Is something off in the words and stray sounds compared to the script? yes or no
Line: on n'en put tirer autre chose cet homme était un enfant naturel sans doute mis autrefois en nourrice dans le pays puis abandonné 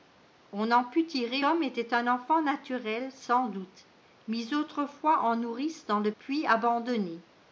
yes